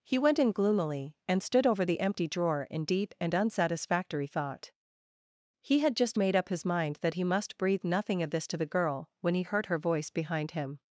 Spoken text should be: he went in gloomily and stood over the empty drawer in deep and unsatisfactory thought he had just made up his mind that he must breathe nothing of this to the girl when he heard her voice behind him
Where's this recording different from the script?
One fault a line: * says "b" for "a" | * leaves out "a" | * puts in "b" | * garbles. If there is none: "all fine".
all fine